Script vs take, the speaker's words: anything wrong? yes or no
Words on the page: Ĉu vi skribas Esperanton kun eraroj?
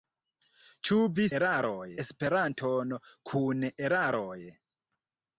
yes